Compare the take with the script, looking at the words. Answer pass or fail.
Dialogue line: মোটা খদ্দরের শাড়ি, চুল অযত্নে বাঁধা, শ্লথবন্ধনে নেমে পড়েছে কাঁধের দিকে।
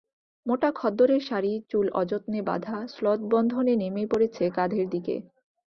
pass